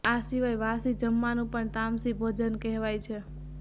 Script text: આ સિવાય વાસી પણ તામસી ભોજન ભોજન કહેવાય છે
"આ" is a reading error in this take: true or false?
false